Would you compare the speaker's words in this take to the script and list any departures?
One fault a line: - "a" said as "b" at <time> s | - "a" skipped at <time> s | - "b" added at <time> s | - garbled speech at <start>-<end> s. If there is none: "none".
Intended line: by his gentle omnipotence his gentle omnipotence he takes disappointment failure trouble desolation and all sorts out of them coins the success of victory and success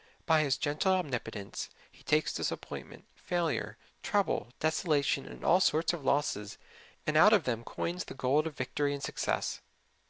- "his gentle omnipotence" skipped at 1.7 s
- "of losses and" added at 5.9 s
- "success" said as "gold" at 8.1 s